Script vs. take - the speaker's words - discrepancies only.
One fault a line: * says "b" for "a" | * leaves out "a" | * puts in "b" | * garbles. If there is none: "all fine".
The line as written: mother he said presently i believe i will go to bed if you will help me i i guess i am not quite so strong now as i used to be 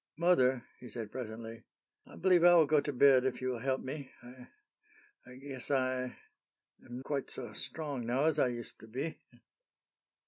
* leaves out "not"